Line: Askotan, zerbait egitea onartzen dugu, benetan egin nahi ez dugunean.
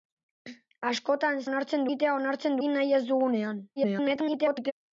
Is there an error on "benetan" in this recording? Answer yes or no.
yes